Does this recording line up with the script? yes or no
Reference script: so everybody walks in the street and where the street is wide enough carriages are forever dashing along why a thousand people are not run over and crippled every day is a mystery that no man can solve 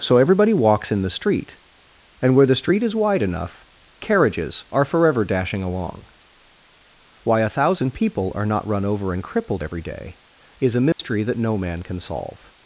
yes